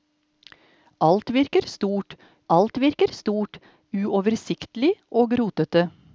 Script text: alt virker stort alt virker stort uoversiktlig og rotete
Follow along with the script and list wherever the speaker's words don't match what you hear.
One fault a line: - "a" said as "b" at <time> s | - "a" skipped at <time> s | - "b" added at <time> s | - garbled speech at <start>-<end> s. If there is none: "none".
none